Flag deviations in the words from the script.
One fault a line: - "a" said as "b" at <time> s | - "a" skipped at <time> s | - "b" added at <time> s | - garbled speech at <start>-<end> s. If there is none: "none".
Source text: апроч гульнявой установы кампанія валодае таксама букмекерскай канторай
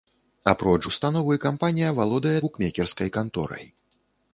- "гульнявой" skipped at 0.8 s
- "таксама" skipped at 2.3 s